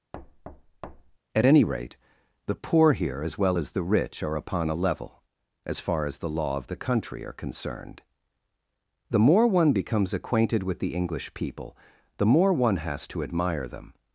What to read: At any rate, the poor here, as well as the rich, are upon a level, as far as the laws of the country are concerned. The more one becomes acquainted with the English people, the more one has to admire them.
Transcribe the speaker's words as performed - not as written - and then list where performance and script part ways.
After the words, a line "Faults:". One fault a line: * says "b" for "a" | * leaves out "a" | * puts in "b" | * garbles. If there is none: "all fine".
At any rate, the poor here, as well as the rich, are upon a level, as far as the law of the country are concerned. The more one becomes acquainted with the English people, the more one has to admire them.
Faults:
* says "law" for "laws"